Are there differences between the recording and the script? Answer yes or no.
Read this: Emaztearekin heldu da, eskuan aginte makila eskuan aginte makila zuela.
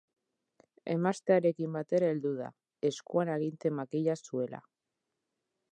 yes